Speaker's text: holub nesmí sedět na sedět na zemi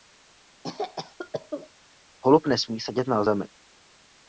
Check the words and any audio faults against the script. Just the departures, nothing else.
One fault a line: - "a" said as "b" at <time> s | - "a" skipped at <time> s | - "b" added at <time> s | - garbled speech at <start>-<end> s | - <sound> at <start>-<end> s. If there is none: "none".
- cough at 0.6-1.7 s
- "sedět na" skipped at 3.2 s